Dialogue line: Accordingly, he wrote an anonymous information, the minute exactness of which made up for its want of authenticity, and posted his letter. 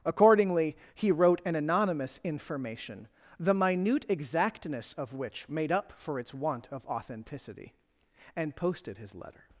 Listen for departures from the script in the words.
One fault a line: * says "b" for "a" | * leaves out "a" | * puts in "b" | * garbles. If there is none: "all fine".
all fine